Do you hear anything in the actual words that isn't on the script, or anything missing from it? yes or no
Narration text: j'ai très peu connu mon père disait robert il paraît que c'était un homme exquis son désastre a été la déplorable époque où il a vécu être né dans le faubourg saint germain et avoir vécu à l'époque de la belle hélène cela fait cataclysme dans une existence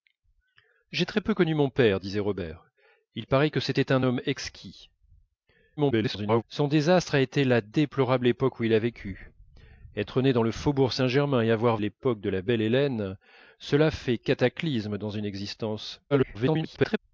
yes